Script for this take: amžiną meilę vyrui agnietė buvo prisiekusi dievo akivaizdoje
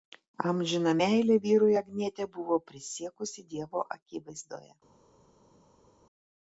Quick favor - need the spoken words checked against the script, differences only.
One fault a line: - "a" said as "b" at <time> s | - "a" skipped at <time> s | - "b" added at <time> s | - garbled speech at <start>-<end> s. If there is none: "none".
none